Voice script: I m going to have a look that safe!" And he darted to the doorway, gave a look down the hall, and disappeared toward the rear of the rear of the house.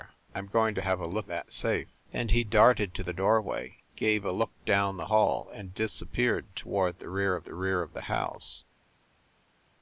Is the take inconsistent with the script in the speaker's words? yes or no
no